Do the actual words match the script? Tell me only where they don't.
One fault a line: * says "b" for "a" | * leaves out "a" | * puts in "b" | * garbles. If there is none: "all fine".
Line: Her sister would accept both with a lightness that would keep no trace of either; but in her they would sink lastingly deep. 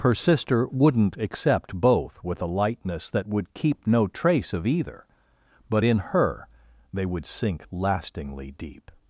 * says "wouldn't" for "would"